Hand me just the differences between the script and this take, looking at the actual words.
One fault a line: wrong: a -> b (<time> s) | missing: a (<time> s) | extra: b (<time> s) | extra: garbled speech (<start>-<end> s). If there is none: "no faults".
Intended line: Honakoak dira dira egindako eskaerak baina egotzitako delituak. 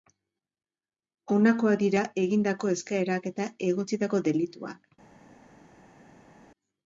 missing: dira (2.0 s)
wrong: baina -> eta (3.3 s)